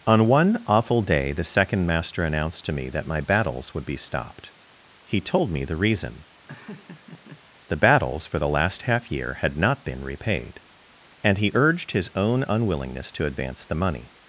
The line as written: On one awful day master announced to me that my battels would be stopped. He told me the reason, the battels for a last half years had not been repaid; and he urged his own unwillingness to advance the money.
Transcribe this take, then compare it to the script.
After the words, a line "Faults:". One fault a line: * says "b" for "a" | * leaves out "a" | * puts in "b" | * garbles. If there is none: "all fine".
On one awful day the second master announced to me that my battels would be stopped. He told me the reason, the battels for the last half year had not been repaid; and he urged his own unwillingness to advance the money.
Faults:
* puts in "the second"
* says "the" for "a"
* says "year" for "years"